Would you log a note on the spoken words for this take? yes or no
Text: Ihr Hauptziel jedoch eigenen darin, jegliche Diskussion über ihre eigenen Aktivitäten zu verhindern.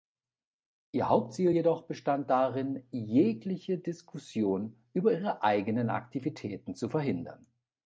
yes